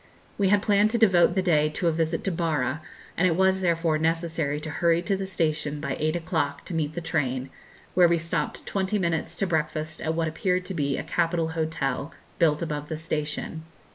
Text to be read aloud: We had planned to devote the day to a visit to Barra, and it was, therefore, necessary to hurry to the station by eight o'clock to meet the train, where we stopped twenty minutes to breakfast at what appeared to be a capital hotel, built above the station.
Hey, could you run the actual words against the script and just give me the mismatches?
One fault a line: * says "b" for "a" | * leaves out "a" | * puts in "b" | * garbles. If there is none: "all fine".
all fine